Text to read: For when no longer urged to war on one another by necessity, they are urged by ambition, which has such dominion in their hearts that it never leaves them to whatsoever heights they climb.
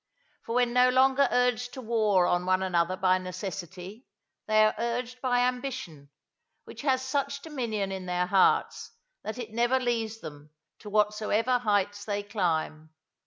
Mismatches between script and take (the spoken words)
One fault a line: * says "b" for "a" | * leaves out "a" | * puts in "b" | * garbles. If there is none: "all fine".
all fine